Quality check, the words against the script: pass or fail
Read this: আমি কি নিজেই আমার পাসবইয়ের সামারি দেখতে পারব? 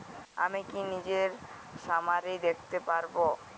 fail